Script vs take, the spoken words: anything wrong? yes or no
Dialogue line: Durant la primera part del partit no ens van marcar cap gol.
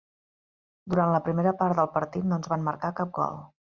no